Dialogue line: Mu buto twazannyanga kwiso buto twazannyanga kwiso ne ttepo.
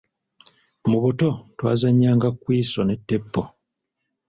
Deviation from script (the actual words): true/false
true